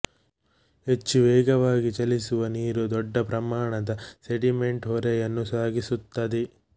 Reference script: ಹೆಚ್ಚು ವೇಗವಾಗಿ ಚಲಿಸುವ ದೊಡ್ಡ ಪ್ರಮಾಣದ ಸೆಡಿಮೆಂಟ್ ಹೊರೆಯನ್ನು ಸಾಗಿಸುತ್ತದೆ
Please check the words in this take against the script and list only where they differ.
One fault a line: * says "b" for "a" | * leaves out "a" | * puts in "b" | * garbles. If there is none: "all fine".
* puts in "ನೀರು"